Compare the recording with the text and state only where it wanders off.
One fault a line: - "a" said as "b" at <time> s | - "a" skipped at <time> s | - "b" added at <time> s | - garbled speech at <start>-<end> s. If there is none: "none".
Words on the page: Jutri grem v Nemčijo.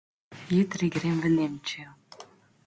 none